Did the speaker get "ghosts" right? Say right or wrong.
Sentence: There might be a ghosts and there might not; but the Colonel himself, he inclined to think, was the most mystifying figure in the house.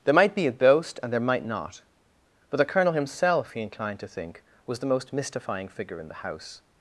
wrong